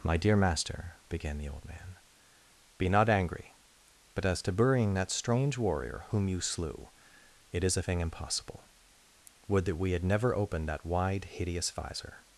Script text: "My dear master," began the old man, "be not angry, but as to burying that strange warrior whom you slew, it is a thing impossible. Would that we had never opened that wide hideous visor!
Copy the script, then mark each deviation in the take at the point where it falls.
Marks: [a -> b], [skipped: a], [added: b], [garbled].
"My dear master," began the old man, "be not angry, but as to burying that strange warrior whom you slew, it is a thing impossible. Would that we had never opened that wide hideous visor!